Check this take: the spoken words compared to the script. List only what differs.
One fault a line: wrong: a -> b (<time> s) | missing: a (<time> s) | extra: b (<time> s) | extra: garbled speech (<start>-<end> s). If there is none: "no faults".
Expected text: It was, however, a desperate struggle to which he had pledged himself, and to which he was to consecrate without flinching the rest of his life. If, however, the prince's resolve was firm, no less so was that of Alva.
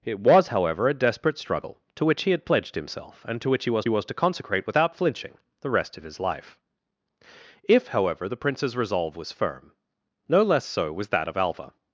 extra: was (3.9 s)